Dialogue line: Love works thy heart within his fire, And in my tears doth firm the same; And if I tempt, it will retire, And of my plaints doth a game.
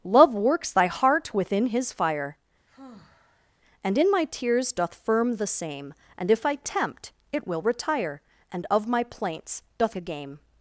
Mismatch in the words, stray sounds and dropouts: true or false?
true